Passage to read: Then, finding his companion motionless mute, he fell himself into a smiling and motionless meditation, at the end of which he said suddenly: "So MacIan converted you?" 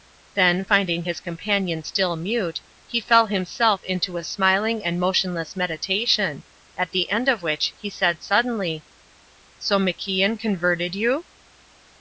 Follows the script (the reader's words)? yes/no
no